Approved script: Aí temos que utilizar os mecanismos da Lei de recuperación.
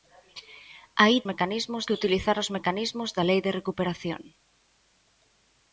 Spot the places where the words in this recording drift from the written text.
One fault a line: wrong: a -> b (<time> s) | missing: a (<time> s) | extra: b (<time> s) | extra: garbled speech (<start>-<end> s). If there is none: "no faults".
wrong: temos -> mecanismos (1.3 s)